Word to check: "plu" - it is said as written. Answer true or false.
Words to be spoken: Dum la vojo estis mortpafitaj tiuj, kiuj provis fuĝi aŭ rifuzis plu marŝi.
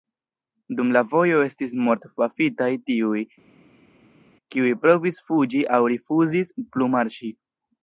true